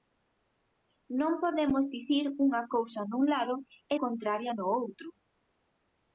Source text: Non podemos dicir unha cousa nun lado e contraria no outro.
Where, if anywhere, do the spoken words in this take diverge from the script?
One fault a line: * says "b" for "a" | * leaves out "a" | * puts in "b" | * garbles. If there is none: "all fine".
all fine